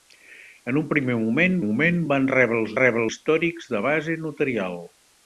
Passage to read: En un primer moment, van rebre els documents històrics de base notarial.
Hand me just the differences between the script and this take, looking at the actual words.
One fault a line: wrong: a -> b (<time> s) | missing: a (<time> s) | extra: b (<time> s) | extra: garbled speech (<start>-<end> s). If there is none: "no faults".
extra: moment (1.6 s)
wrong: documents -> rebre (2.8 s)